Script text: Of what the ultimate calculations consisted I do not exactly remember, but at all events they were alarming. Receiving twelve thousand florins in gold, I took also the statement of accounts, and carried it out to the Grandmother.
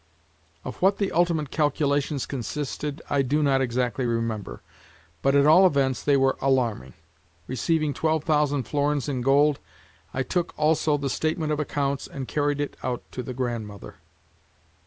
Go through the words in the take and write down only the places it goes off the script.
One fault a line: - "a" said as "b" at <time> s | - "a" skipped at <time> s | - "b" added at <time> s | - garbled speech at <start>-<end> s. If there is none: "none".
none